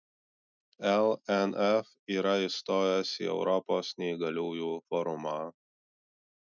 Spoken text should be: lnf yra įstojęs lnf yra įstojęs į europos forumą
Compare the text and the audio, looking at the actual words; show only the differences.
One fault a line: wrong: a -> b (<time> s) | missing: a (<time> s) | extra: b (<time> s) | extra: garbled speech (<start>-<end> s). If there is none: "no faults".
missing: lnf yra įstojęs (3.1 s)
extra: neįgaliųjų (4.0 s)